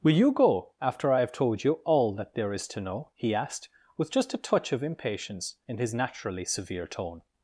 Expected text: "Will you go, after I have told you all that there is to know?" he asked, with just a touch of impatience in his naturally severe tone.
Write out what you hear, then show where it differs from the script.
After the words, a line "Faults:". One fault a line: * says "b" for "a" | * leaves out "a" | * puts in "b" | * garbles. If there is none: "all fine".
"Will you go, after I have told you all that there is to know?" he asked, with just a touch of impatience in his naturally severe tone.
Faults:
all fine